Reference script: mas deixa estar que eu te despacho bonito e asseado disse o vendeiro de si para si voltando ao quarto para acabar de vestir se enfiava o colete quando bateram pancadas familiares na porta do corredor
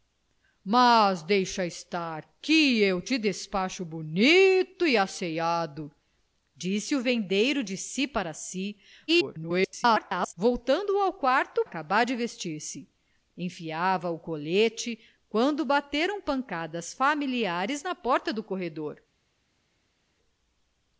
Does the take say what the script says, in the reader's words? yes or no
no